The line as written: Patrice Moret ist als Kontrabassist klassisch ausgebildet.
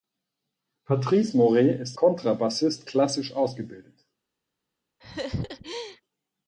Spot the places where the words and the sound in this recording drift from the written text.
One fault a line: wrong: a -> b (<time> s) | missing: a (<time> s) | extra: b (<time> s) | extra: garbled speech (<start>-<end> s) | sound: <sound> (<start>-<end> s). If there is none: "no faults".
missing: als (2.0 s)
sound: laugh (5.0-6.0 s)